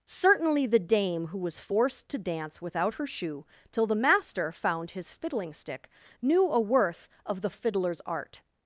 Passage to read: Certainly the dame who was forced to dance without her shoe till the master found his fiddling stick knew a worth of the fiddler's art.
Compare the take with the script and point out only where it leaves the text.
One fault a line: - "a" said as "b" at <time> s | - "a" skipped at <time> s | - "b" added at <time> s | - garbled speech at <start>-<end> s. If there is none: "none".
none